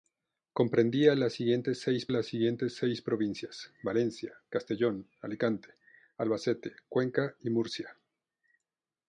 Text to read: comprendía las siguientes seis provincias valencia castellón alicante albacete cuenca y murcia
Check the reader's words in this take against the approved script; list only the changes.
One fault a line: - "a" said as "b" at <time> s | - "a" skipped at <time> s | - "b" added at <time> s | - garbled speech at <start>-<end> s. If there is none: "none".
- "las siguientes seis" added at 2.1 s